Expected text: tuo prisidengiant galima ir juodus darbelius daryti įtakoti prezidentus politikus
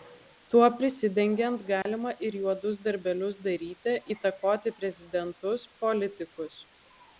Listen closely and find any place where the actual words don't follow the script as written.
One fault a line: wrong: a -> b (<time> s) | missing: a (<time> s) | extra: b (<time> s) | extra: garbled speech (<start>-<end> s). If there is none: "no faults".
no faults